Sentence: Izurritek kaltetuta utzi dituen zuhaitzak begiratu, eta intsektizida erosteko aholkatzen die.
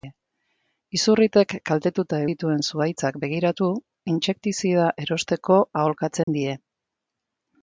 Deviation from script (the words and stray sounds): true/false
true